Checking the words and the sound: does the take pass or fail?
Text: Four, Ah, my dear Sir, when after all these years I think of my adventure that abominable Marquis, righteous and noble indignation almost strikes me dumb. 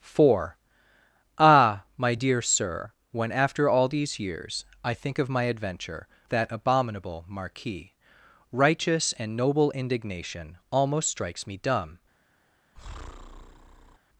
fail